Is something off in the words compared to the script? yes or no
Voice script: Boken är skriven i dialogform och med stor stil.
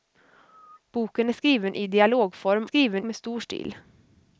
yes